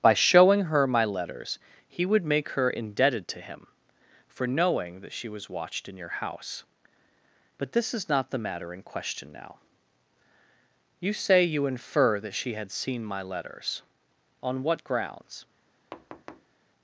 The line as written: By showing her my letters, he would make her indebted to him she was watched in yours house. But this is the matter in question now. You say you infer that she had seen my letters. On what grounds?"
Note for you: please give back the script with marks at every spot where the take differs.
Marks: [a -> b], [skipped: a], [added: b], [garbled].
By showing her my letters, he would make her indebted to him [added: for knowing that] she was watched in [yours -> your] house. But this is [added: not] the matter in question now. You say you infer that she had seen my letters. On what grounds?"